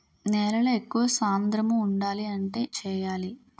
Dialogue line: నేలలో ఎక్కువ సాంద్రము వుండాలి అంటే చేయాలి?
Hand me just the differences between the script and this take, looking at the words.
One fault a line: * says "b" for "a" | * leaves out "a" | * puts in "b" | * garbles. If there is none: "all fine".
all fine